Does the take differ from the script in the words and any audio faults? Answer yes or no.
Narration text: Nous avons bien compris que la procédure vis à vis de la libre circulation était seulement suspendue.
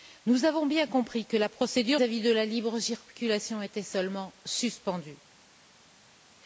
yes